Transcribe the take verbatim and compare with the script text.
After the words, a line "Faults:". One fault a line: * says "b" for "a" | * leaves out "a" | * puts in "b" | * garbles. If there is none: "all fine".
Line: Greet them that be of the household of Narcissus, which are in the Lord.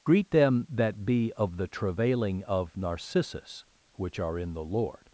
Greet them that be of the travailing of Narcissus, which are in the Lord.
Faults:
* says "travailing" for "household"